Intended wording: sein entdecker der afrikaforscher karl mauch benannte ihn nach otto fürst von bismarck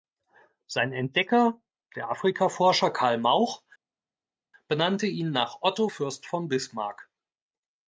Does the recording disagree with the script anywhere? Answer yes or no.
no